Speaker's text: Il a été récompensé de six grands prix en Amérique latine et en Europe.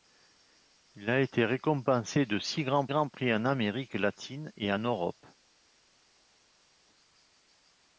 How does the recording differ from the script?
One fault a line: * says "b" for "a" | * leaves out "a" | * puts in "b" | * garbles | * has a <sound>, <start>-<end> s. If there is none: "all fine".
* puts in "grands"